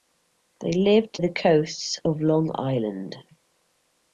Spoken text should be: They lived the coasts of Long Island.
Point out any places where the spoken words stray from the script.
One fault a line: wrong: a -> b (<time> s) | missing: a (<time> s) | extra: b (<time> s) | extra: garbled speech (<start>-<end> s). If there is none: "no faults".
no faults